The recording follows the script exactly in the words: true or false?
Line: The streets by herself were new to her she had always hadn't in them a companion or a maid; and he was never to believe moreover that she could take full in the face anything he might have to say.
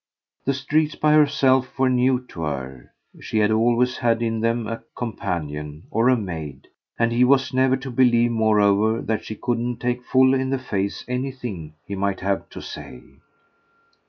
false